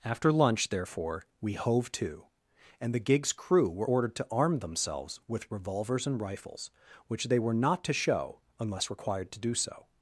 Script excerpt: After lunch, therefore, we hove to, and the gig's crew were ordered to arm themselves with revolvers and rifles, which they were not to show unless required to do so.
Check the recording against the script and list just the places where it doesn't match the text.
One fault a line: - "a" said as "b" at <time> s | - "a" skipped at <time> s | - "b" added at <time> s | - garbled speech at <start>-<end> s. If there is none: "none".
none